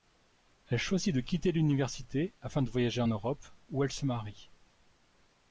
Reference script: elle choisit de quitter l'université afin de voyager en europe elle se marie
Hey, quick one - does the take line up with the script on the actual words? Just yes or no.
no